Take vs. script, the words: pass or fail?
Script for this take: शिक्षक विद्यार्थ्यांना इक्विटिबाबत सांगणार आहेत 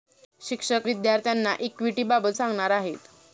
pass